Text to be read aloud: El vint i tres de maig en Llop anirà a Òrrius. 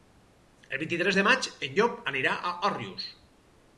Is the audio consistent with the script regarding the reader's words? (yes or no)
yes